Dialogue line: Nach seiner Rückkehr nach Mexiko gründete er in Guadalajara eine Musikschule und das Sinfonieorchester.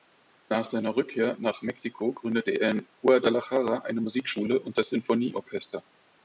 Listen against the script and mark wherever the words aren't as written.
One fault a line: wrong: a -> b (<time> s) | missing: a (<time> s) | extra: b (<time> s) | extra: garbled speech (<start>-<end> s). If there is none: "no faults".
no faults